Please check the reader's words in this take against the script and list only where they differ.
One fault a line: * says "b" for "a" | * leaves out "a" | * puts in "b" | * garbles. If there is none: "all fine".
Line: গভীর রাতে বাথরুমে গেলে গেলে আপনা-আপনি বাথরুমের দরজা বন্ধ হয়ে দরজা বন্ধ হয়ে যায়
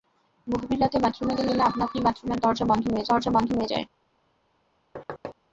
all fine